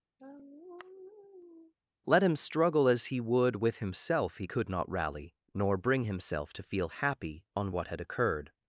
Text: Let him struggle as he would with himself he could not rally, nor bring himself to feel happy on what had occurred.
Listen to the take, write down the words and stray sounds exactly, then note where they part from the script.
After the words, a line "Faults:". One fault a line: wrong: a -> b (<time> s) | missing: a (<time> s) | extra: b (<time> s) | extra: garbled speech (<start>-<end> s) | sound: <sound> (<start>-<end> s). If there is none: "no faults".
Let him struggle as he would with himself he could not rally, nor bring himself to feel happy on what had occurred.
Faults:
sound: sigh (0.2-1.7 s)